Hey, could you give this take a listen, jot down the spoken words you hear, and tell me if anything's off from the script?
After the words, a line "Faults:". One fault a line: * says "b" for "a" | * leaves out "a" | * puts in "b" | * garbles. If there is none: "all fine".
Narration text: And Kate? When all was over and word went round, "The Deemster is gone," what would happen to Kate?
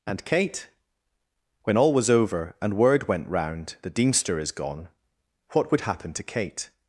And Kate? When all was over and word went round, "The Deemster is gone," what would happen to Kate?
Faults:
all fine